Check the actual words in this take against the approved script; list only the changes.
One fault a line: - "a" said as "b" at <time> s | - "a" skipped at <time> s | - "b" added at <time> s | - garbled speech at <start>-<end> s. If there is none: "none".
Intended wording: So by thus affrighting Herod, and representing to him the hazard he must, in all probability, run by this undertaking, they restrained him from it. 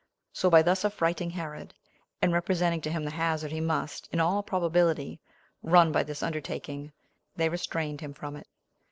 none